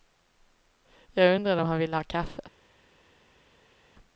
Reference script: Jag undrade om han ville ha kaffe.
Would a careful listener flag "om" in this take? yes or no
no